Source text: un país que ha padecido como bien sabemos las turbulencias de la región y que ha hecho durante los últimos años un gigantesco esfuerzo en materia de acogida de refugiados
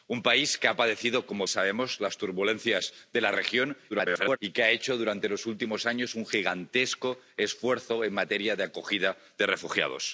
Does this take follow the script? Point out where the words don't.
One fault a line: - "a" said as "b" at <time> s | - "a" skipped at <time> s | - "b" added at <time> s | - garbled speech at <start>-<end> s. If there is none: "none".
- "bien" skipped at 1.5 s
- garbled speech at 3.9-4.4 s